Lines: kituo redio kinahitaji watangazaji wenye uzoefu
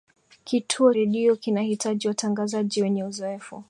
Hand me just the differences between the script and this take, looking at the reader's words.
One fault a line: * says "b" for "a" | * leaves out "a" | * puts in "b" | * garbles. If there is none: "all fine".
all fine